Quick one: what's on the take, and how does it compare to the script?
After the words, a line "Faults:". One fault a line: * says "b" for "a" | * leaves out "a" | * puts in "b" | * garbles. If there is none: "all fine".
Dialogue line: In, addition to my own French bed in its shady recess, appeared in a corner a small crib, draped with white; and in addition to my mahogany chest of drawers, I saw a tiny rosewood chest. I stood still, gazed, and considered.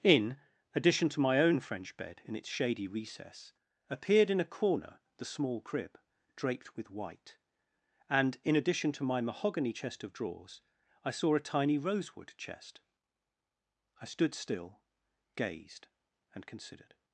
In, addition to my own French bed in its shady recess, appeared in a corner the small crib, draped with white; and in addition to my mahogany chest of drawers, I saw a tiny rosewood chest. I stood still, gazed, and considered.
Faults:
* says "the" for "a"